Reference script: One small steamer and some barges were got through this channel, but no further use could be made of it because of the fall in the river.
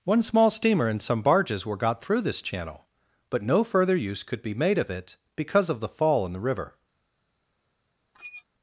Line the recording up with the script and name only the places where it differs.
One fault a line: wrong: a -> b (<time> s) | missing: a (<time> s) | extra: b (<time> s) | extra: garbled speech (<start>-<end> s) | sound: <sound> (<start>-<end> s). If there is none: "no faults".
sound: squeak (8.1-8.4 s)